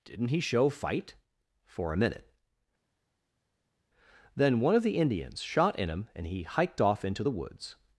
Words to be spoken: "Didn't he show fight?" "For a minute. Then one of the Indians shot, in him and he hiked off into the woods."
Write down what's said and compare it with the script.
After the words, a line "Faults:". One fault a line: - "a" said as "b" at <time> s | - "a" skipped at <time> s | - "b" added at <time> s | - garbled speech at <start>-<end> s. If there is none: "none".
"Didn't he show fight?" "For a minute. Then one of the Indians shot, in him and he hiked off into the woods."
Faults:
none